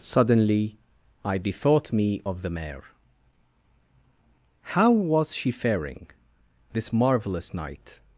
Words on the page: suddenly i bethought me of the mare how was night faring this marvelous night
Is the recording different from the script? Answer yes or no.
yes